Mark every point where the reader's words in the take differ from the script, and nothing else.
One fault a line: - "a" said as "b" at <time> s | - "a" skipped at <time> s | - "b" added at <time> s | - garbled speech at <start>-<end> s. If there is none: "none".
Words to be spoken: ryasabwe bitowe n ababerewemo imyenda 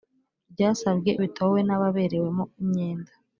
none